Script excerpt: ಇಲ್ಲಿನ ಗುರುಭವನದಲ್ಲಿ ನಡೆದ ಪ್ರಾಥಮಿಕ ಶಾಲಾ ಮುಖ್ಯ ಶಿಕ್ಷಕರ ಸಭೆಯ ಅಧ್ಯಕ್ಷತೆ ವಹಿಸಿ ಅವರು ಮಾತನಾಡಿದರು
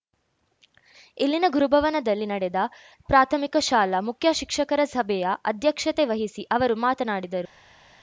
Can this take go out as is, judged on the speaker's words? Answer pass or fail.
pass